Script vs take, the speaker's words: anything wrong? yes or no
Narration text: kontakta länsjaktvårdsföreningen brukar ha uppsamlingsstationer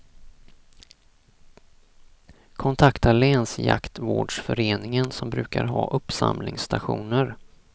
yes